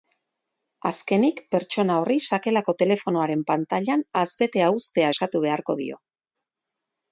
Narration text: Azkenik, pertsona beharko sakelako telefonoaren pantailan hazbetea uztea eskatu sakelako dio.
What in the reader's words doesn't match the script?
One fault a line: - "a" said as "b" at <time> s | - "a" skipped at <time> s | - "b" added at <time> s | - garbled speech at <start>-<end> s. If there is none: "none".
- "beharko" said as "horri" at 2.0 s
- "sakelako" said as "beharko" at 5.5 s